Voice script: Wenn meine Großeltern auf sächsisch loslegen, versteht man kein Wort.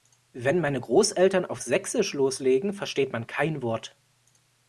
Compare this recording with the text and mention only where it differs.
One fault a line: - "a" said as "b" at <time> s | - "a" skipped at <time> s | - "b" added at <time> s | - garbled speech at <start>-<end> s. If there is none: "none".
none